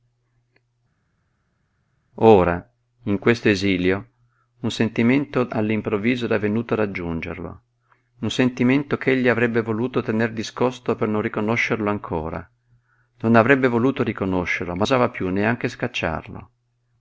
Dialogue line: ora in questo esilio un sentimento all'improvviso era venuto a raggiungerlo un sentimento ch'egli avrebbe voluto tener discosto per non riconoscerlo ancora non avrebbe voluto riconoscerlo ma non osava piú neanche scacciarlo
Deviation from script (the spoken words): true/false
true